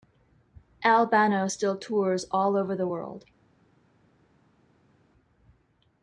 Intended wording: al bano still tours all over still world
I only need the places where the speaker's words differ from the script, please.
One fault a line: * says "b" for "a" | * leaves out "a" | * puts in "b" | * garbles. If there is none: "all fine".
* says "the" for "still"